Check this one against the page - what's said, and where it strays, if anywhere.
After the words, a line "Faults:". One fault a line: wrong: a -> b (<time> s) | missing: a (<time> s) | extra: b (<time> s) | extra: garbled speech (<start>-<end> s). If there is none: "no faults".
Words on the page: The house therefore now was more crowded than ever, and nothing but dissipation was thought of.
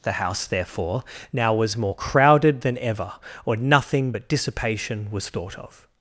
The house therefore now was more crowded than ever, or nothing but dissipation was thought of.
Faults:
wrong: and -> or (3.5 s)